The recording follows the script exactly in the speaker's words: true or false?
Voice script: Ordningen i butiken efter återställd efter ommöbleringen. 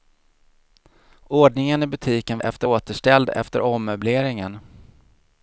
true